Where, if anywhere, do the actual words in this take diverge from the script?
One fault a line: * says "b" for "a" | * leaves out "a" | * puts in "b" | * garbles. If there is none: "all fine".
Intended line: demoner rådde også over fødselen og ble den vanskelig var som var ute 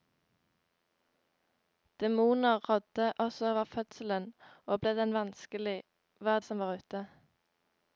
all fine